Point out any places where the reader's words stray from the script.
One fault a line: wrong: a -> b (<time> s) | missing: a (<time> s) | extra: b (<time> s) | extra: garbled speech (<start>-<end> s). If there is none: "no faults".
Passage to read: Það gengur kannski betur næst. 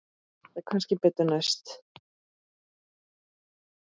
missing: gengur (0.6 s)